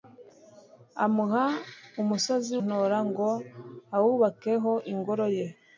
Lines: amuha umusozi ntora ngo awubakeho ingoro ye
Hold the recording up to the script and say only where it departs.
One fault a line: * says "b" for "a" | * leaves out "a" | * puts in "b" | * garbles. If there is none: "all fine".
all fine